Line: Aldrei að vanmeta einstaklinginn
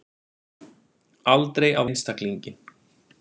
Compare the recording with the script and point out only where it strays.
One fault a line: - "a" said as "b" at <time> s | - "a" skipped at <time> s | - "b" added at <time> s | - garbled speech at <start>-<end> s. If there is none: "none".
- "vanmeta" skipped at 1.9 s